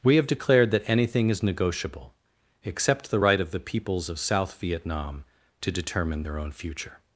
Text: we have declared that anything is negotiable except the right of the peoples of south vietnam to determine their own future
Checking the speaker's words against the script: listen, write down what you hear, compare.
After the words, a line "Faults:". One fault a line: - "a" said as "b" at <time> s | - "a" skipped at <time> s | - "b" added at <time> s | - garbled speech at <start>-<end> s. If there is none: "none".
we have declared that anything is negotiable except the right of the peoples of south vietnam to determine their own future
Faults:
none